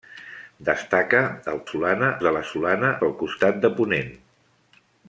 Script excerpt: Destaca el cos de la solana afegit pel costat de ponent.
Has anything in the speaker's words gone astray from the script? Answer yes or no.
yes